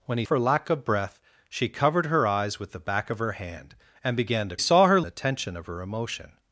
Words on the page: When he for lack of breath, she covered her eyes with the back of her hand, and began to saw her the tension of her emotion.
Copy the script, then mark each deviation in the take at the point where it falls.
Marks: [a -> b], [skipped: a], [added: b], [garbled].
When he for lack of breath, she covered her eyes with the back of her hand, and began to saw her the tension of her emotion.